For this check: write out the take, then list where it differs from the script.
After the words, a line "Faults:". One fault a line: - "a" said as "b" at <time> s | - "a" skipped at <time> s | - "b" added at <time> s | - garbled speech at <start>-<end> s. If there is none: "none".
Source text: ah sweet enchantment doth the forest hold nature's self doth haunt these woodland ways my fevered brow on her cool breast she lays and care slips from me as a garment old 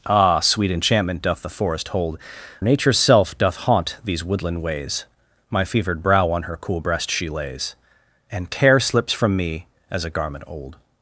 ah sweet enchantment doth the forest hold nature's self doth haunt these woodland ways my fevered brow on her cool breast she lays and care slips from me as a garment old
Faults:
none